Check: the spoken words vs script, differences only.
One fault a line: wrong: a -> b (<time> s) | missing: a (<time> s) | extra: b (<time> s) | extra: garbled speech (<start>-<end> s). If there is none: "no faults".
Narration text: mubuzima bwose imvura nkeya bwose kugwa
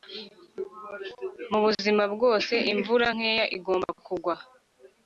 wrong: bwose -> igomba (3.6 s)